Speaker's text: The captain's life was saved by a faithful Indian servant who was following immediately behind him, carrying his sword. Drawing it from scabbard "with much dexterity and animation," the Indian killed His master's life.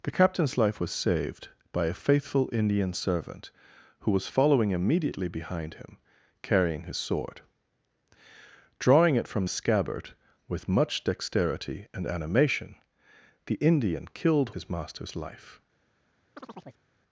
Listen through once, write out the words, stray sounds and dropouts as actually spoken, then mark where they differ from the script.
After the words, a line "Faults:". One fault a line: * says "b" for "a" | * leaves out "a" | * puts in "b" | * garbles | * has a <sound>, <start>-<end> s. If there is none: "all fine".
The captain's life was saved by a faithful Indian servant who was following immediately behind him, carrying his sword. Drawing it from scabbard "with much dexterity and animation," the Indian killed His master's life.
Faults:
* has a chirp, 16.4-16.8 s